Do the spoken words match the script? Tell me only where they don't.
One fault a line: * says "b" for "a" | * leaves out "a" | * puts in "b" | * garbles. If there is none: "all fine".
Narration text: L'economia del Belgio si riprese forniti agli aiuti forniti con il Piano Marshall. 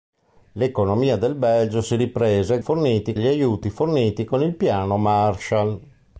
all fine